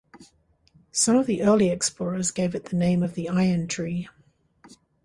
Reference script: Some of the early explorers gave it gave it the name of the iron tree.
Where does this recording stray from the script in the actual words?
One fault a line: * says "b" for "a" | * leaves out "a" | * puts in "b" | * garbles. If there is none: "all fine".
* leaves out "gave it"